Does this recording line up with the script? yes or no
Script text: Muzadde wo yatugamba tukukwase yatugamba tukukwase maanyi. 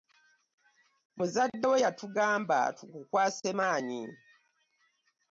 no